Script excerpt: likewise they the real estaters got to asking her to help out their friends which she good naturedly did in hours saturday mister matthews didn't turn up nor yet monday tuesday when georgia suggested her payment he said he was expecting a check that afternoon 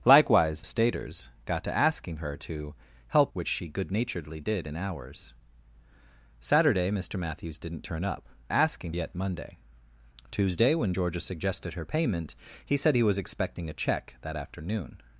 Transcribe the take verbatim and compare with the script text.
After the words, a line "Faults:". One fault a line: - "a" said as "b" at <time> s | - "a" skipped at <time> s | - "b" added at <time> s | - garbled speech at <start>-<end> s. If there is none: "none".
likewise estaters got to asking her to help which she good naturedly did in hours saturday mister matthews didn't turn up asking yet monday tuesday when georgia suggested her payment he said he was expecting a check that afternoon
Faults:
- "they the real" skipped at 0.6 s
- "out their friends" skipped at 3.3 s
- "nor" said as "asking" at 8.5 s